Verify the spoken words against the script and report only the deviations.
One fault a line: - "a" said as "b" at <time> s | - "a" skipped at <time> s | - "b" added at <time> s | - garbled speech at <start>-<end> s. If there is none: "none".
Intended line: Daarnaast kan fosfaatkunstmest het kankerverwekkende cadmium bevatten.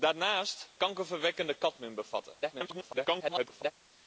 - "kan fosfaatkunstmest het" skipped at 0.7 s
- garbled speech at 2.4-3.7 s